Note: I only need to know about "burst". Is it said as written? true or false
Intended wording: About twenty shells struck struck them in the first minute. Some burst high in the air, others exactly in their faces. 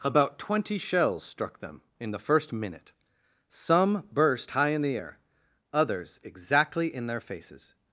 true